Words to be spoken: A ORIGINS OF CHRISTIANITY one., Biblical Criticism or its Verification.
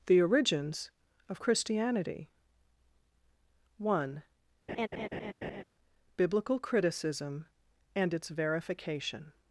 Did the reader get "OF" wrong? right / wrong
right